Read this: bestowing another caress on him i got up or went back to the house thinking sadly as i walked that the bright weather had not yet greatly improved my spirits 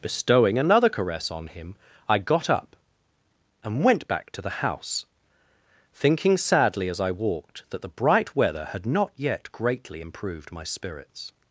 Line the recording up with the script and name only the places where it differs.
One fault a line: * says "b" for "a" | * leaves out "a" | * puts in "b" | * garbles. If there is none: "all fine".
* says "and" for "or"